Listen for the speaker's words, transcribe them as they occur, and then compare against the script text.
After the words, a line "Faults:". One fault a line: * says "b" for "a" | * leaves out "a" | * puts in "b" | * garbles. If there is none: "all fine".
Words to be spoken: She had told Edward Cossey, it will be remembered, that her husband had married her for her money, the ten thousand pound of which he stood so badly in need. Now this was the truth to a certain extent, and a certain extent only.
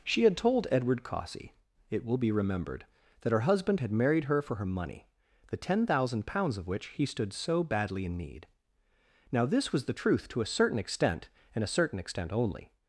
She had told Edward Cossey, it will be remembered, that her husband had married her for her money, the ten thousand pounds of which he stood so badly in need. Now this was the truth to a certain extent, and a certain extent only.
Faults:
* says "pounds" for "pound"